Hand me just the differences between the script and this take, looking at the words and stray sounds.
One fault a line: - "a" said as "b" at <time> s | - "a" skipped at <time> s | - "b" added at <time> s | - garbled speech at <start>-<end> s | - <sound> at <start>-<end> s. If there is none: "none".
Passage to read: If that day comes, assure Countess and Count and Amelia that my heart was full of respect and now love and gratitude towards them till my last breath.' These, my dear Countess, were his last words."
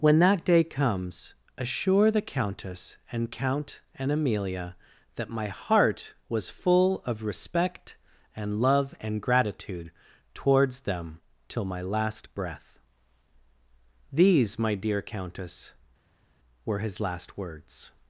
- "If" said as "When" at 0.0 s
- "the" added at 2.1 s
- "now" skipped at 8.6 s